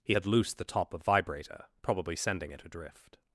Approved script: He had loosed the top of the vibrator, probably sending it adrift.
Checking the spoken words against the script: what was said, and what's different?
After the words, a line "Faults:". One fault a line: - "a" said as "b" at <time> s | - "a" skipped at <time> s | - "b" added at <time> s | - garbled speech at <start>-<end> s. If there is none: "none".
He had loosed the top of vibrator, probably sending it adrift.
Faults:
- "the" skipped at 1.0 s